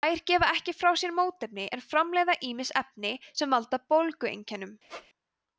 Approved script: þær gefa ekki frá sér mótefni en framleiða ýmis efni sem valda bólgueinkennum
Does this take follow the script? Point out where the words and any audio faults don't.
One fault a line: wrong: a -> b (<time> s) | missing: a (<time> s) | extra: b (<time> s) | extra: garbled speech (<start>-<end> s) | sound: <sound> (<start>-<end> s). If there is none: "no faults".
sound: squeak (4.9-5.1 s)